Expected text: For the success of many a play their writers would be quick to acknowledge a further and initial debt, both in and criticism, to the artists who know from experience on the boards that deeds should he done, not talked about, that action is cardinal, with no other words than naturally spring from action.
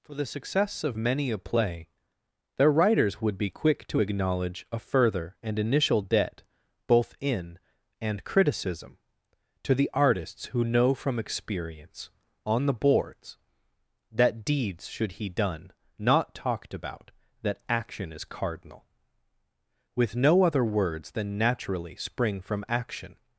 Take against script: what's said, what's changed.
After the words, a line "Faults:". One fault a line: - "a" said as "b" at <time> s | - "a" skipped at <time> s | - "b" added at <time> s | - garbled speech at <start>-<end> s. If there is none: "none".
For the success of many a play their writers would be quick to acknowledge a further and initial debt, both in and criticism, to the artists who know from experience on the boards that deeds should he done, not talked about, that action is cardinal, with no other words than naturally spring from action.
Faults:
none